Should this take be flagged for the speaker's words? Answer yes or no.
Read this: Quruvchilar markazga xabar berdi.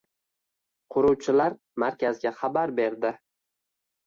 no